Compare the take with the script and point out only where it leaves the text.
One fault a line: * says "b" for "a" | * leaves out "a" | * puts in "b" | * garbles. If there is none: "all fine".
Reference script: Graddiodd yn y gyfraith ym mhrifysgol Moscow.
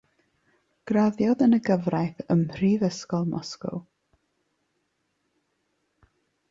all fine